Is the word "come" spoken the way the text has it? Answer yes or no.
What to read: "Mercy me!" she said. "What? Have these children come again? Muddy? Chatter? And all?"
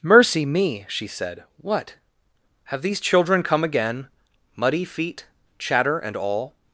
yes